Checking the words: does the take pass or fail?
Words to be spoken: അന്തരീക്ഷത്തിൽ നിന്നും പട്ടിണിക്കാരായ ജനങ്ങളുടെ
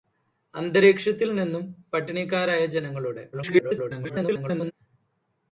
fail